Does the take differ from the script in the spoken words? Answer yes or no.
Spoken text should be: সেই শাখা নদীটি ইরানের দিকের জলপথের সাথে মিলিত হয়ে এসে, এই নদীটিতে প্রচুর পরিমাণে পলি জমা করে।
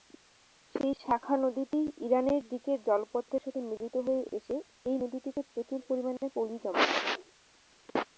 no